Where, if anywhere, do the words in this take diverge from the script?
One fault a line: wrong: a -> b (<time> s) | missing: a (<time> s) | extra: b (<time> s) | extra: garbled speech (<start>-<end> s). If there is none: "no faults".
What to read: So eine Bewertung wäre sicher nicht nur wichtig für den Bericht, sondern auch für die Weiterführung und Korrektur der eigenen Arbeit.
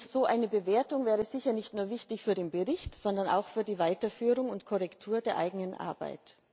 no faults